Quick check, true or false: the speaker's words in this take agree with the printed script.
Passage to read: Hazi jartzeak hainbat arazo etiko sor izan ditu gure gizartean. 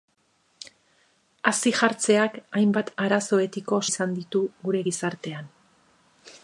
false